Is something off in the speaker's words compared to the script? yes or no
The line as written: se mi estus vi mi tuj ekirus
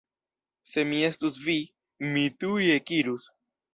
no